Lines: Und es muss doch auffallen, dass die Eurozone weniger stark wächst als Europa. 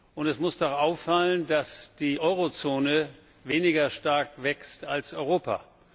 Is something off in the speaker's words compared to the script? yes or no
no